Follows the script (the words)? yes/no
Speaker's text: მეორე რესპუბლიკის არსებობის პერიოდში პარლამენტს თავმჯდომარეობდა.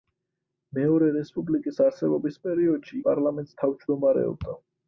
yes